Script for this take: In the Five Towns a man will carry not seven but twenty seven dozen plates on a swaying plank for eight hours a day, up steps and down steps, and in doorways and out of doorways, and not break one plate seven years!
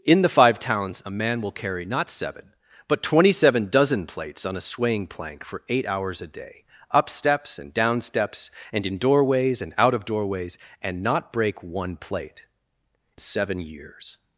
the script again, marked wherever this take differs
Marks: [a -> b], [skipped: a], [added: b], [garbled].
In the Five Towns a man will carry not seven but twenty seven dozen plates on a swaying plank for eight hours a day, up steps and down steps, and in doorways and out of doorways, and not break one plate seven years!